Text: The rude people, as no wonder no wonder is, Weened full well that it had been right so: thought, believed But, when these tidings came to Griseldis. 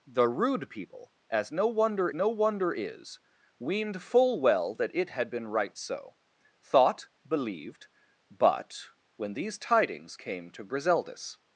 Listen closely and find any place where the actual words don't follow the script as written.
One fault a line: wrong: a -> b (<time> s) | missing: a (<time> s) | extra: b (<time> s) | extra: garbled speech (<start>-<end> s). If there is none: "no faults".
no faults